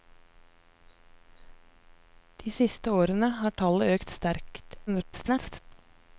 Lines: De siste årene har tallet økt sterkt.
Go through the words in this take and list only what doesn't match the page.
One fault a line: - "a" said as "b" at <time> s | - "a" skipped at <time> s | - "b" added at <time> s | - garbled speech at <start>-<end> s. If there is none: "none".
- garbled speech at 4.9-5.6 s